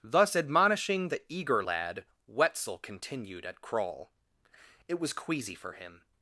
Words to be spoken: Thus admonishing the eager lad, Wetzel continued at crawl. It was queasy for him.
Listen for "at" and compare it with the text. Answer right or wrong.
right